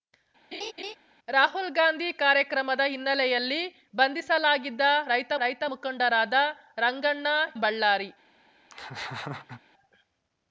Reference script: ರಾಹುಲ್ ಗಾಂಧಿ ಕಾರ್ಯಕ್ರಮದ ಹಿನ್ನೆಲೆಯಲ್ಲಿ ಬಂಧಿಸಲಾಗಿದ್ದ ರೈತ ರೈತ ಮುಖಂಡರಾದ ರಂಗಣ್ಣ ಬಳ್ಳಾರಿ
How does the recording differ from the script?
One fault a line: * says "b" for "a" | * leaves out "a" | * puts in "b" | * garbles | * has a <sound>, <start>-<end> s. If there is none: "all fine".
* has a laugh, 0.5-1.0 s
* has a laugh, 8.7-9.6 s